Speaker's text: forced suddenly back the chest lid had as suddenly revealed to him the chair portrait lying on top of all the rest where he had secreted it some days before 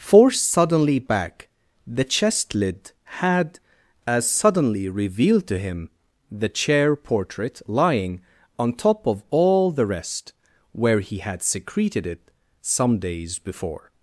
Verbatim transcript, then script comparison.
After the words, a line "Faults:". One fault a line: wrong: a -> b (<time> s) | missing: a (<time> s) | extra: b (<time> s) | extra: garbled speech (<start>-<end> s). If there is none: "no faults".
forced suddenly back the chest lid had as suddenly revealed to him the chair portrait lying on top of all the rest where he had secreted it some days before
Faults:
no faults